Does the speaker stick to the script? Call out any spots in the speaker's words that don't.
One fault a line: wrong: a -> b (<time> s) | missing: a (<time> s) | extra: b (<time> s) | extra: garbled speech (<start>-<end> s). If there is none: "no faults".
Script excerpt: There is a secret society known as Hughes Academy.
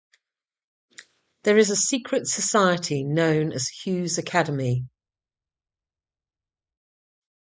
no faults